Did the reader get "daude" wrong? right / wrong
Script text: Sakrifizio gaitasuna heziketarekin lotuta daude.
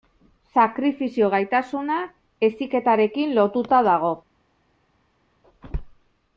wrong